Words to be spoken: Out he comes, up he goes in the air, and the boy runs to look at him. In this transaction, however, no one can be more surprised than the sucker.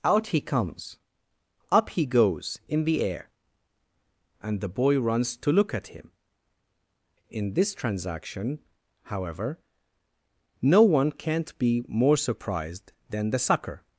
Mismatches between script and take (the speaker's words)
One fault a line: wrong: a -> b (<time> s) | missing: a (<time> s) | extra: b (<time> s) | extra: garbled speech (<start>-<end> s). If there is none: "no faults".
wrong: can -> can't (11.1 s)